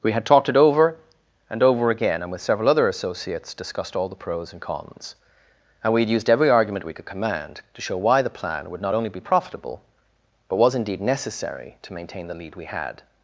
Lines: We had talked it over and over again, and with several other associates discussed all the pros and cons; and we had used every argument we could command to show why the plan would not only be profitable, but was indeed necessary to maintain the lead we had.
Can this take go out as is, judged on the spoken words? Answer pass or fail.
pass